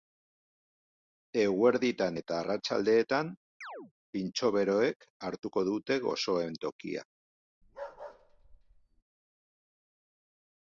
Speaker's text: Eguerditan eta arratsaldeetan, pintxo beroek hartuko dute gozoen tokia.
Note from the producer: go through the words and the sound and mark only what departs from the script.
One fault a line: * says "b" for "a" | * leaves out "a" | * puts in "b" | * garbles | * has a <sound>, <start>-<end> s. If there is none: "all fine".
* has a chirp, 3.6-3.9 s
* has a bark, 7.6-9.0 s